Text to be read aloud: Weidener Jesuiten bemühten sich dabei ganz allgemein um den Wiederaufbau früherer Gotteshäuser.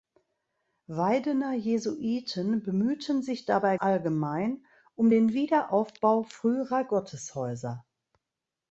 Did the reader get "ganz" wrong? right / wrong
wrong